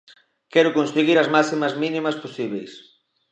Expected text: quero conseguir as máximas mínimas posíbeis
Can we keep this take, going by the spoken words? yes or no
yes